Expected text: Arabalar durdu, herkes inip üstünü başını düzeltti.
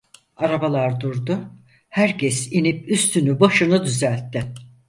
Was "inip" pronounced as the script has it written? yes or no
yes